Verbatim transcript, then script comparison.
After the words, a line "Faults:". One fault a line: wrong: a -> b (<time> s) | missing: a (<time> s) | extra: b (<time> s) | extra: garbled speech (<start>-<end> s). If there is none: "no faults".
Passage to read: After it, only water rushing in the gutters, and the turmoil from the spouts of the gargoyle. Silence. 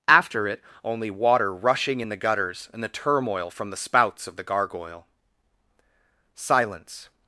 After it, only water rushing in the gutters, and the turmoil from the spouts of the gargoyle. Silence.
Faults:
no faults